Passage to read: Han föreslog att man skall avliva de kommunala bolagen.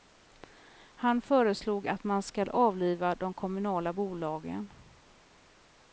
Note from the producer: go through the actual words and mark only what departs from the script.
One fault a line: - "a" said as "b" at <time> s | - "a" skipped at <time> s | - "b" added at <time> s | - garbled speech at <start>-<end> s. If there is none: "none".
none